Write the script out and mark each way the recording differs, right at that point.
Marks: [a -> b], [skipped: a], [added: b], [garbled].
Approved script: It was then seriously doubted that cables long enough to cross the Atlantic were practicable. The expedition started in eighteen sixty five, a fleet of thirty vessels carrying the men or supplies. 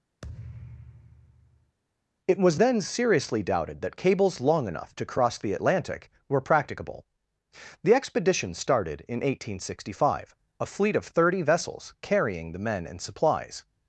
It was then seriously doubted that cables long enough to cross the Atlantic were practicable. The expedition started in eighteen sixty five, a fleet of thirty vessels carrying the men [or -> and] supplies.